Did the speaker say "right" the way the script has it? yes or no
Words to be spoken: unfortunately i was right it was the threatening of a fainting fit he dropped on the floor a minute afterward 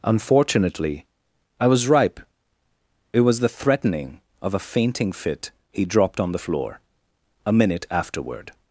no